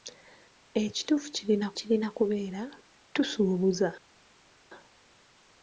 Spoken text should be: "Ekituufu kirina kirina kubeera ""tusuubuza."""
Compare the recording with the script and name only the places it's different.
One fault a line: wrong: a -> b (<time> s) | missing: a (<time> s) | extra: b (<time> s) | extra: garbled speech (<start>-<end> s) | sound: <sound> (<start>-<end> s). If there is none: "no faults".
no faults